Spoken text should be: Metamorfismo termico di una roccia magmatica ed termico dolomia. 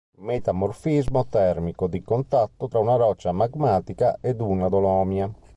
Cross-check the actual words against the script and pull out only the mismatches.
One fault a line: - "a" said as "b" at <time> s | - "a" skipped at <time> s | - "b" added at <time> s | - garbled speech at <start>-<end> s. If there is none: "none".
- "contatto tra" added at 2.0 s
- "termico" said as "una" at 4.4 s